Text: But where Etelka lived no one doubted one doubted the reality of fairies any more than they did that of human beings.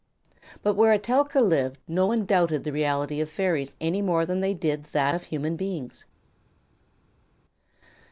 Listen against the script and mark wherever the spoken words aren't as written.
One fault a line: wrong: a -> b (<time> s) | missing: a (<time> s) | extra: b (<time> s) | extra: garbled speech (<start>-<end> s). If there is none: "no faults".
missing: one doubted (2.6 s)